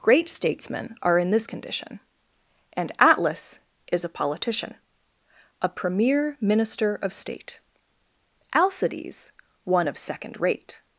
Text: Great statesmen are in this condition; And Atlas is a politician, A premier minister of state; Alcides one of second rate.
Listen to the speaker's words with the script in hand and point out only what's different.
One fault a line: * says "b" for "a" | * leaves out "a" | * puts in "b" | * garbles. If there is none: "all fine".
all fine